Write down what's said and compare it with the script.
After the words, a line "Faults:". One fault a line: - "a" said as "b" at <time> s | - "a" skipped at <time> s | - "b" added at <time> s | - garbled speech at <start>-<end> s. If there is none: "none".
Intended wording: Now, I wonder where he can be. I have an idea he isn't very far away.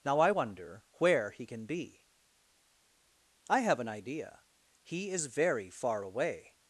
Now, I wonder where he can be. I have an idea he is very far away.
Faults:
- "isn't" said as "is" at 5.1 s